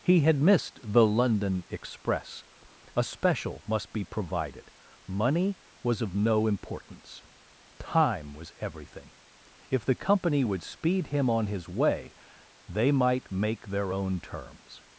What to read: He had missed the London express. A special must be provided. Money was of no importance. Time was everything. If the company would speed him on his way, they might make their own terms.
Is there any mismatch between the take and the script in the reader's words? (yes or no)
no